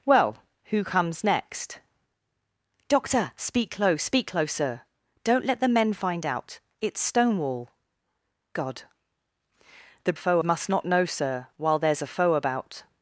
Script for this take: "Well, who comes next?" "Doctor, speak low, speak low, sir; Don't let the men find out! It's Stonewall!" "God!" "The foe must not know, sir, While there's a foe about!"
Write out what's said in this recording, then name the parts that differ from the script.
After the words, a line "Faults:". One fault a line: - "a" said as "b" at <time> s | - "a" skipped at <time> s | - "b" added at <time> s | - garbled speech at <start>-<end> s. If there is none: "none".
"Well, who comes next?" "Doctor, speak low, speak low, sir; Don't let the men find out! It's Stonewall!" "God!" "The foe must not know, sir, While there's a foe about!"
Faults:
none